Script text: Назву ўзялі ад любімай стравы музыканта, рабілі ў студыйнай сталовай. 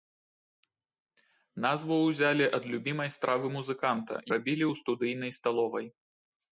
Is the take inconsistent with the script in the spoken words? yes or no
no